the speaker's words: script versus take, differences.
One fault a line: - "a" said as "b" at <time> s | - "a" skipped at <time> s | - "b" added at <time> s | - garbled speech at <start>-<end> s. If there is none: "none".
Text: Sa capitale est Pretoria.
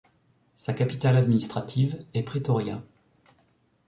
- "administrative" added at 1.1 s